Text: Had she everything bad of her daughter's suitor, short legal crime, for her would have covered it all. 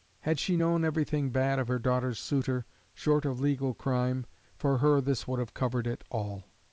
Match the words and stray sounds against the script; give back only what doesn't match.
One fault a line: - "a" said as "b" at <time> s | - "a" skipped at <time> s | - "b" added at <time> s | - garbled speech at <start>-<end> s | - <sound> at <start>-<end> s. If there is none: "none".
- "known" added at 0.5 s
- "of" added at 3.2 s
- "this" added at 5.0 s